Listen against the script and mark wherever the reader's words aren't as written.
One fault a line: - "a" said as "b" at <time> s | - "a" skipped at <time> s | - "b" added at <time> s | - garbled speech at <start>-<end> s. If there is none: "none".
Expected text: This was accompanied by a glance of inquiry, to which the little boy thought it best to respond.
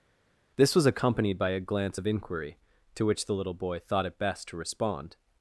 none